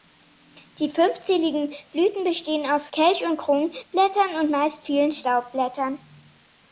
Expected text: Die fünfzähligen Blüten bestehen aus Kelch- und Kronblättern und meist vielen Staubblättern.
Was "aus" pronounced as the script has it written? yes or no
yes